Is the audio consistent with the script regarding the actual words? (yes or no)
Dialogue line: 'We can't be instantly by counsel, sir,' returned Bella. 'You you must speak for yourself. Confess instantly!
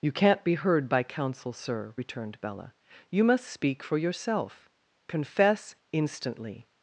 no